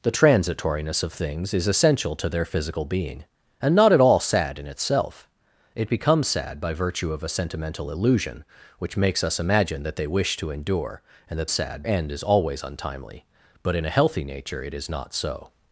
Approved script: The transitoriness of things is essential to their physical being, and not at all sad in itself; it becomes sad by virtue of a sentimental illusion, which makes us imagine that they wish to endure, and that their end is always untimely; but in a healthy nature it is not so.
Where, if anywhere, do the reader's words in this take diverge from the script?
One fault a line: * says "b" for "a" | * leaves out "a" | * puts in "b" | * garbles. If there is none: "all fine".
* says "sad" for "their"